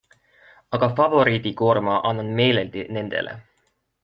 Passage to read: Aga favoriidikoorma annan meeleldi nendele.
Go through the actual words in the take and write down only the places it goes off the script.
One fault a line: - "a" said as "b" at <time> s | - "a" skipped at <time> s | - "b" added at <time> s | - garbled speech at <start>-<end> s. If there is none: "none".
none